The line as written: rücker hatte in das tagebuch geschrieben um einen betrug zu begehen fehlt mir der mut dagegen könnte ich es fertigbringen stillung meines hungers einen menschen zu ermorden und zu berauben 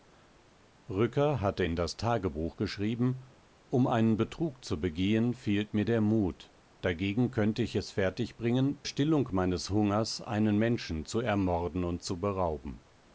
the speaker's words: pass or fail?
pass